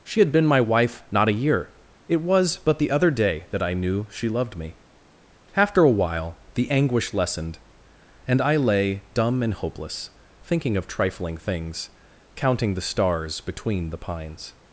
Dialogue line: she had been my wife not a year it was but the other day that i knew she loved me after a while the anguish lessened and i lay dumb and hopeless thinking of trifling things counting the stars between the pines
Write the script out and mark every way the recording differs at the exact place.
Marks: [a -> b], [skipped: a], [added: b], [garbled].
she had been my wife not a year it was but the other day that i knew she loved me after a while the anguish lessened and i lay dumb and hopeless thinking of trifling things counting the stars between the pines